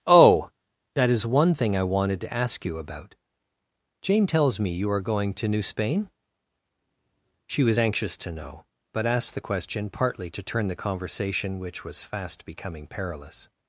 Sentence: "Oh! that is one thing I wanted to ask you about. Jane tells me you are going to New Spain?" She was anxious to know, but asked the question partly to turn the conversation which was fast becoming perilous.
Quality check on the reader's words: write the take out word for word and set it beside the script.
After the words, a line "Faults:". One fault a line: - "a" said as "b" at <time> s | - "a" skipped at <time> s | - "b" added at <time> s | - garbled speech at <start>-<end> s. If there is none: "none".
"Oh! that is one thing I wanted to ask you about. Jane tells me you are going to New Spain?" She was anxious to know, but asked the question partly to turn the conversation which was fast becoming perilous.
Faults:
none